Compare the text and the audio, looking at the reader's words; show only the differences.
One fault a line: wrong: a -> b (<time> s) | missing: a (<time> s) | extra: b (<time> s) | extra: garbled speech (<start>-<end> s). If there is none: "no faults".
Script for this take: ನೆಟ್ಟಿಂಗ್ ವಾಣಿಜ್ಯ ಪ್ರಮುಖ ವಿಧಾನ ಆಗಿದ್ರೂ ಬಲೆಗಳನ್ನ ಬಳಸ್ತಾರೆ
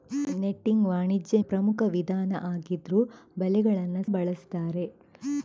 no faults